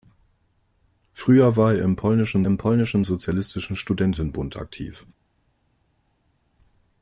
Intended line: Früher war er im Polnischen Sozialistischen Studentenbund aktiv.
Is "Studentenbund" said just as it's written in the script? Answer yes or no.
yes